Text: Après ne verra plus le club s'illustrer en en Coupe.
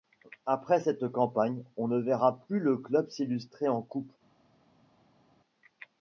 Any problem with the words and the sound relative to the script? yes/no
yes